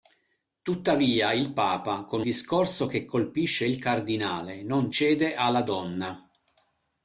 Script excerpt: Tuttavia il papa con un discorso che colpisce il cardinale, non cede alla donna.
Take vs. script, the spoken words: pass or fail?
fail